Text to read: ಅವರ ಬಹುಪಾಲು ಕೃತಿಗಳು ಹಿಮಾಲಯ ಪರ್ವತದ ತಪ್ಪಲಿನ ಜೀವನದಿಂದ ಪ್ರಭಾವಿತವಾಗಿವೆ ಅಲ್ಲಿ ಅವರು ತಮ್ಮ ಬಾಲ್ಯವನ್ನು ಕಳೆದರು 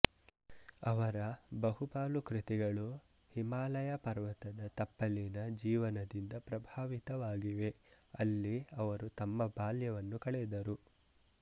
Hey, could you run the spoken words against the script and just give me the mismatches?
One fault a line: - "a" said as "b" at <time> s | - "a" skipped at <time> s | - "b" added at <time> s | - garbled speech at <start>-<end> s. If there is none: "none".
none